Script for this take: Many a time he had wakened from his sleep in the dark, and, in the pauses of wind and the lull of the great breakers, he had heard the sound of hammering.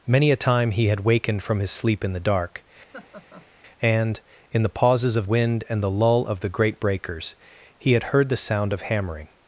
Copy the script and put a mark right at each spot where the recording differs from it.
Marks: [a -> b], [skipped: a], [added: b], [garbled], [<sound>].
Many a time he had wakened from his sleep in the dark, [laugh] and, in the pauses of wind and the lull of the great breakers, he had heard the sound of hammering.